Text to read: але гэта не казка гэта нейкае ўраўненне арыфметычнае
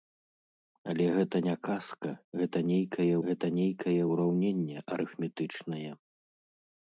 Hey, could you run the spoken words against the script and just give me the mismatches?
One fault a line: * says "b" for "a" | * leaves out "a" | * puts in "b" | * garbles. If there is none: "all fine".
* puts in "гэта нейкае"